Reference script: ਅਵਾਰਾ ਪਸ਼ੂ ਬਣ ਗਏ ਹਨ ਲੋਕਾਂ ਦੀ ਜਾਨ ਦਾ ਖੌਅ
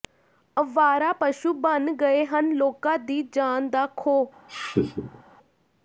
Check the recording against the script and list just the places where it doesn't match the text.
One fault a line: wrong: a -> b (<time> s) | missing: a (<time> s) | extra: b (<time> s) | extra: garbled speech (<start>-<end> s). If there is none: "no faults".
no faults